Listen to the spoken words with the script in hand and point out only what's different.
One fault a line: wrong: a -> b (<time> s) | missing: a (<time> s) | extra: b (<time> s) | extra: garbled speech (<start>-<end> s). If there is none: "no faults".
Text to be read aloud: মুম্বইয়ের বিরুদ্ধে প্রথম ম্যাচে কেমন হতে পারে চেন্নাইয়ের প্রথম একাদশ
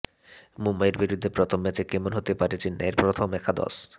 no faults